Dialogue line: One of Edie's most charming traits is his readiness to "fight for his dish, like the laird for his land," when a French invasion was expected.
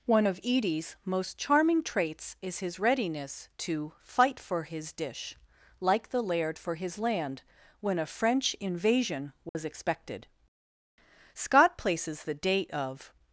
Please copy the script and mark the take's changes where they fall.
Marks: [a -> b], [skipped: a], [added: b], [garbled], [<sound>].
One of Edie's most charming traits is his readiness to "fight for his dish, like the laird for his land," when a French invasion was [dropout] expected. [added: Scott places the date of]